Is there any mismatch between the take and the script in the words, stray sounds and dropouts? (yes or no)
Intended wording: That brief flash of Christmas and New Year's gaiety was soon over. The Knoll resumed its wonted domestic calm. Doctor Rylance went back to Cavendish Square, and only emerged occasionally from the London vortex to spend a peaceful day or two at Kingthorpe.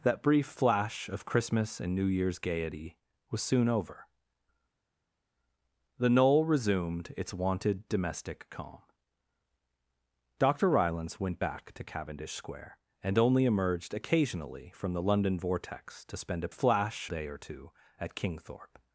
yes